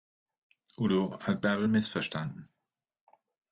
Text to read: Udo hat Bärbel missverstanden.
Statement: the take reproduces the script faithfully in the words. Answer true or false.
true